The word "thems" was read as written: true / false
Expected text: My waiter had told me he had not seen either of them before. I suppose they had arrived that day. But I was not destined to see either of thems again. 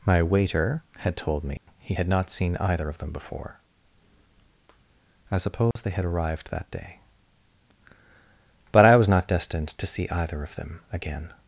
false